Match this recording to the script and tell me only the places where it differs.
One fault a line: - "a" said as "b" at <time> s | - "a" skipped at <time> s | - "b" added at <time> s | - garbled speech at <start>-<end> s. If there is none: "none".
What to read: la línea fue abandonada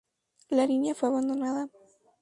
none